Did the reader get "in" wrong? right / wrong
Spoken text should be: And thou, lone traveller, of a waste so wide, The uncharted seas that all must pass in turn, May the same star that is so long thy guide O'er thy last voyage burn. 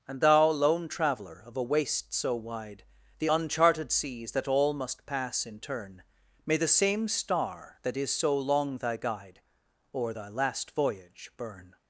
right